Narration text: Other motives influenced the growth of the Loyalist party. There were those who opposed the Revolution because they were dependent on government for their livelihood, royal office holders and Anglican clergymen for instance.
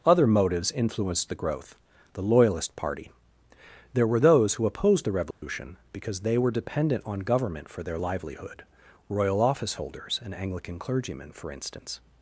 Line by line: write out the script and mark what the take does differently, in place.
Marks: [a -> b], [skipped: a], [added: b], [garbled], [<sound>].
Other motives influenced the growth [skipped: of] the Loyalist party. There were those who opposed the Revolution [dropout] because they were dependent on government for their livelihood, royal office holders and Anglican clergymen for instance.